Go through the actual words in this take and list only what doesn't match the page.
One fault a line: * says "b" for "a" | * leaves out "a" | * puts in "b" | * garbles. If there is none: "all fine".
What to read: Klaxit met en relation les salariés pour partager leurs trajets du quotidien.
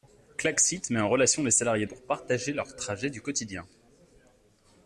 all fine